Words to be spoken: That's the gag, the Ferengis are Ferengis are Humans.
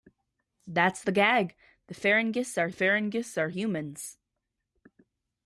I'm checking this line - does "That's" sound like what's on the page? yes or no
yes